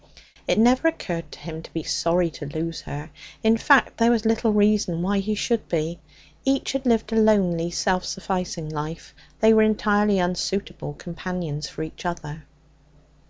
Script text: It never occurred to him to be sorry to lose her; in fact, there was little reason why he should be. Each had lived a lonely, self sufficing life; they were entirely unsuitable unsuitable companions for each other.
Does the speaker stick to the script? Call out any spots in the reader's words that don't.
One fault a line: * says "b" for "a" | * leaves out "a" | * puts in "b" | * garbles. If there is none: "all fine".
* leaves out "unsuitable"